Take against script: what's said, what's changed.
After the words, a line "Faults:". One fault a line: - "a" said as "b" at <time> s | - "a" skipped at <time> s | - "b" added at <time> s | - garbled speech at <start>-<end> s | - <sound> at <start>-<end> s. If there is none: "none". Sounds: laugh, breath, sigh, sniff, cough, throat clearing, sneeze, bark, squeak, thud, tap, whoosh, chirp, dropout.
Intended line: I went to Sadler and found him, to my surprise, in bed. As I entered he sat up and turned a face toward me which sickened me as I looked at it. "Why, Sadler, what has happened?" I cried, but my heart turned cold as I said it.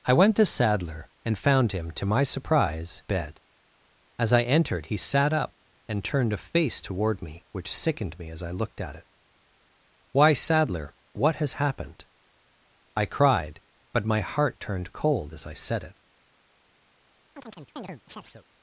I went to Sadler and found him, to my surprise, bed. As I entered he sat up and turned a face toward me which sickened me as I looked at it. "Why, Sadler, what has happened?" I cried, but my heart turned cold as I said it.
Faults:
- "in" skipped at 3.0 s
- chirp at 17.3-18.5 s